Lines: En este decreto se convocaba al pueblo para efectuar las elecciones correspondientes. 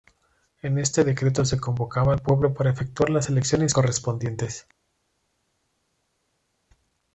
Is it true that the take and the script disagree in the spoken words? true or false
false